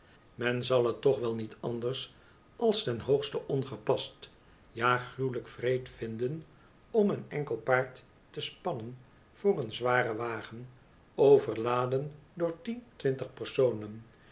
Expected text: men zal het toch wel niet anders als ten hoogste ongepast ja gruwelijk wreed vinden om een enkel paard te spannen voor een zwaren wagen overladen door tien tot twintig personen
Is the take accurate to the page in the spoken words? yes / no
no